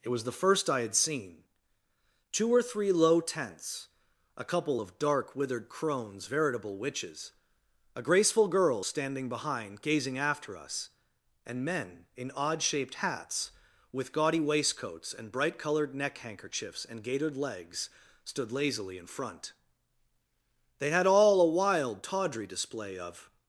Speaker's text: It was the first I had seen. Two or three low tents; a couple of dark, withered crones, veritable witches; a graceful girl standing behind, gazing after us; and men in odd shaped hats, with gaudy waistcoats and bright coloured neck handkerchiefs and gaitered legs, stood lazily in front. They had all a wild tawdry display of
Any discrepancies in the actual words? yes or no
no